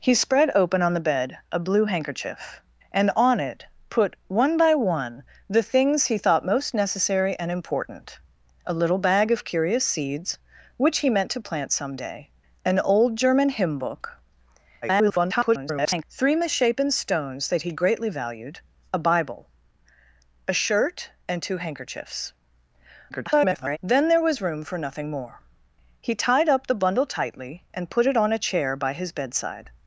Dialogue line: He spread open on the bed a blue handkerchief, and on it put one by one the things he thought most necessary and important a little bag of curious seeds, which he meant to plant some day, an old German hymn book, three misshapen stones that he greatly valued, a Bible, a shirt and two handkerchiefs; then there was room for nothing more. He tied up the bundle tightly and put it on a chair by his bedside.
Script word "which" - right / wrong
right